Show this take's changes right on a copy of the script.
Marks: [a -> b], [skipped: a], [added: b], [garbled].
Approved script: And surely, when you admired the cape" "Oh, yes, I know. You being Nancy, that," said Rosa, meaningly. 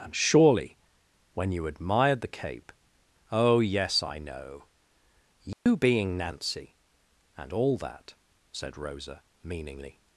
And surely, when you admired the cape" "Oh, yes, I know. You being Nancy, [added: and all] that," said Rosa, meaningly.